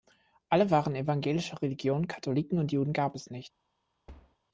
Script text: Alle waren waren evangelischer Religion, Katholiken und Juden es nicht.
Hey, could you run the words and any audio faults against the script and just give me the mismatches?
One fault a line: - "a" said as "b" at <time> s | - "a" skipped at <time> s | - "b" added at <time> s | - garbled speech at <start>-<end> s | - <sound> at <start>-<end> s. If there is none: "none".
- "waren" skipped at 0.9 s
- "gab" added at 2.9 s
- thud at 4.1-4.4 s